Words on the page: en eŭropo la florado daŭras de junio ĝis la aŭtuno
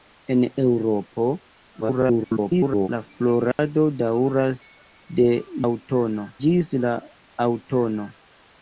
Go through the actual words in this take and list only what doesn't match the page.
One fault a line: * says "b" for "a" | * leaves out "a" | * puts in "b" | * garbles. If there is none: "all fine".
* garbles
* says "aŭtuno" for "junio"